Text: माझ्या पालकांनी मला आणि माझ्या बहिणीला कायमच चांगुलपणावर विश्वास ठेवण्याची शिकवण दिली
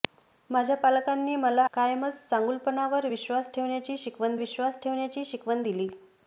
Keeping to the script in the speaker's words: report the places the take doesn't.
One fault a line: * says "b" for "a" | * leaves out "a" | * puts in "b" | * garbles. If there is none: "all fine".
* says "कायमच चांगुलपणावर विश्वास ठेवण्याची शिकवण" for "आणि माझ्या बहिणीला कायमच चांगुलपणावर"